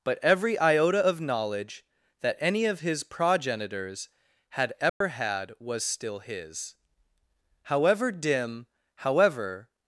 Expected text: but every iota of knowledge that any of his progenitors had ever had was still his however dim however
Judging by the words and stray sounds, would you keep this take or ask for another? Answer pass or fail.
fail